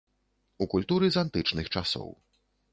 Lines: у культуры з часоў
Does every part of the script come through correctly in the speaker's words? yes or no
no